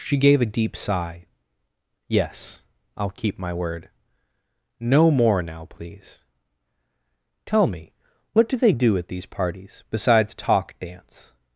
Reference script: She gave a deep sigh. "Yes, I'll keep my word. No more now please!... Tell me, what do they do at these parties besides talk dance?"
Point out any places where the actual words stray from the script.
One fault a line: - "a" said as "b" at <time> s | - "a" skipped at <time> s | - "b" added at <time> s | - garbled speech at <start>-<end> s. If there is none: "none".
none